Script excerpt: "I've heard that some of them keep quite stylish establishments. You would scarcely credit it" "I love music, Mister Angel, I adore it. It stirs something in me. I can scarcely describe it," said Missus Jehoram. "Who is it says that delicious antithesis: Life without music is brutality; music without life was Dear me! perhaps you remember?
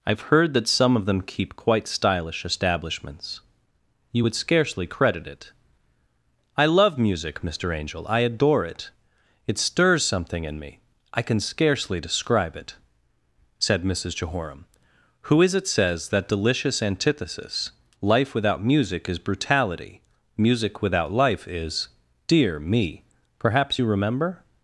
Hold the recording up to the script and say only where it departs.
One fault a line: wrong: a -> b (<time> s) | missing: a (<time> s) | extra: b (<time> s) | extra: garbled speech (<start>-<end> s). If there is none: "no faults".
wrong: was -> is (21.5 s)